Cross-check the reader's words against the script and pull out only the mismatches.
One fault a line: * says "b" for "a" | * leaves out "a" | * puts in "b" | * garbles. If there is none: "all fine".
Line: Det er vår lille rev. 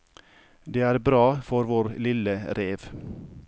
* puts in "bra for"